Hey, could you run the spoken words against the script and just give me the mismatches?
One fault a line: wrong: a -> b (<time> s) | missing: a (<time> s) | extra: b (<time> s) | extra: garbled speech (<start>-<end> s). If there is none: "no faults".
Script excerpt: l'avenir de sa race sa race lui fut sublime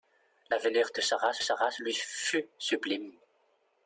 no faults